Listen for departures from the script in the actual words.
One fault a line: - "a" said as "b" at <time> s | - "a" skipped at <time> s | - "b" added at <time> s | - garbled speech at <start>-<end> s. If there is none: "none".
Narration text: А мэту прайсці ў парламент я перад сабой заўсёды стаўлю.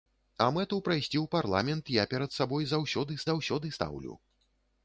- "заўсёды" added at 3.3 s